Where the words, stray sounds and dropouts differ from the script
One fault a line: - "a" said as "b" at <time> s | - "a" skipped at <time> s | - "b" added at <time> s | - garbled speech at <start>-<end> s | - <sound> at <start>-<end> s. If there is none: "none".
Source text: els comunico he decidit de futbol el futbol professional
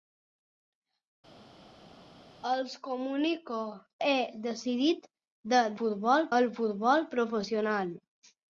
none